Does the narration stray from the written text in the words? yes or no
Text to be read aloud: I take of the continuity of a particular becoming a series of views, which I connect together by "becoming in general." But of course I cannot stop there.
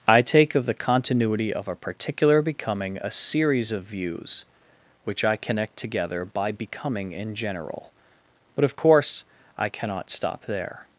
no